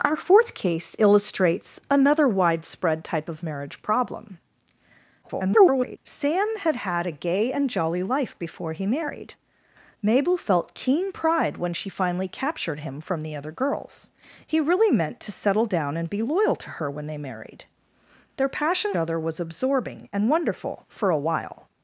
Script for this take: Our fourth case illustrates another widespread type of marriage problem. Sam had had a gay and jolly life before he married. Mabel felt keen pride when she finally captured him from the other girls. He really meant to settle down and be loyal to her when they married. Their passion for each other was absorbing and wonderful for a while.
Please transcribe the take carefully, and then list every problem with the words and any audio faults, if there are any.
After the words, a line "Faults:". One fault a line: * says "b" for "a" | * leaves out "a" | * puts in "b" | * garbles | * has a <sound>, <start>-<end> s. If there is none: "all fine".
Our fourth case illustrates another widespread type of marriage problem. [garbled] Sam had had a gay and jolly life before he married. Mabel felt keen pride when she finally captured him from the other girls. He really meant to settle down and be loyal to her when they married. Their passion other was absorbing and wonderful for a while.
Faults:
* garbles
* leaves out "for each"